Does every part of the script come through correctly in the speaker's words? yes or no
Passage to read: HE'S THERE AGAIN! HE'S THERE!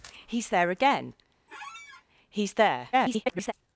no